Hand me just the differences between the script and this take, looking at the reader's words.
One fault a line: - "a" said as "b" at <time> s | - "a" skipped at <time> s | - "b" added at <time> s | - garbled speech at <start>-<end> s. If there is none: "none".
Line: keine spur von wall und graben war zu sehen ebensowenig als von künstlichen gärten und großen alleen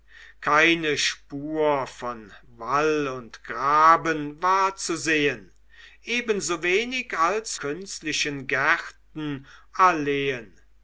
- "von" skipped at 7.5 s
- "und großen" skipped at 9.4 s